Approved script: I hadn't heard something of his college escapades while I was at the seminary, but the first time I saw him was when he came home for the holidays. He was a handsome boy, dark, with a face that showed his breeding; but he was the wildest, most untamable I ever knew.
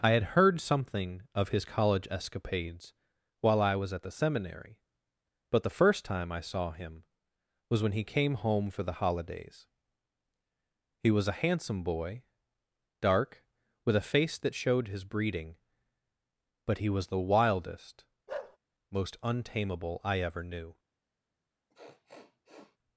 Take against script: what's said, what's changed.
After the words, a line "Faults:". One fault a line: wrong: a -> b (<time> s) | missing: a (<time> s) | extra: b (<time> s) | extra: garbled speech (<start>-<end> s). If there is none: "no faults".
I had heard something of his college escapades while I was at the seminary, but the first time I saw him was when he came home for the holidays. He was a handsome boy, dark, with a face that showed his breeding; but he was the wildest, most untamable I ever knew.
Faults:
wrong: hadn't -> had (0.1 s)